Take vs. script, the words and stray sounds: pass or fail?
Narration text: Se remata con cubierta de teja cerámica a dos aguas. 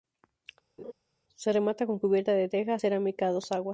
fail